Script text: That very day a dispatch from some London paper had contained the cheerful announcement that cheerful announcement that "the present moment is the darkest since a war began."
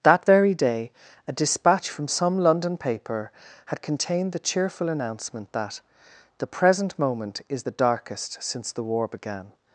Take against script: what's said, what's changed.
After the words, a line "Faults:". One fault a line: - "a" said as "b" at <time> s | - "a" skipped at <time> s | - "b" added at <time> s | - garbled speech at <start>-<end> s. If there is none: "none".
That very day a dispatch from some London paper had contained the cheerful announcement that "the present moment is the darkest since the war began."
Faults:
- "cheerful announcement that" skipped at 5.8 s
- "a" said as "the" at 8.7 s